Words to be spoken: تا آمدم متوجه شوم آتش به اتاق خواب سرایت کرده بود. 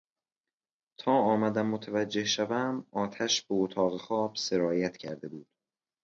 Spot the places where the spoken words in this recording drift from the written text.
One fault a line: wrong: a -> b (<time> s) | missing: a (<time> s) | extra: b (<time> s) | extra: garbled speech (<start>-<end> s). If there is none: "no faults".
no faults